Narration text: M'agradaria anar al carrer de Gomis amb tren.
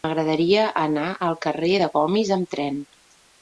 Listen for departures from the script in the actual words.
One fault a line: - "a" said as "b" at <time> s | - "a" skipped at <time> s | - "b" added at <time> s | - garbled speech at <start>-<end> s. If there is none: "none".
none